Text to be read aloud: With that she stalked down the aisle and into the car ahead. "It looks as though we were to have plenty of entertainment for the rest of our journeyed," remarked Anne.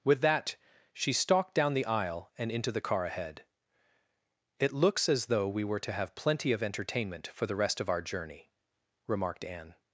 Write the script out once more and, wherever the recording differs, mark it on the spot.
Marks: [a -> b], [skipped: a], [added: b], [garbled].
With that she stalked down the aisle and into the car ahead. "It looks as though we were to have plenty of entertainment for the rest of our [journeyed," -> journey] remarked Anne.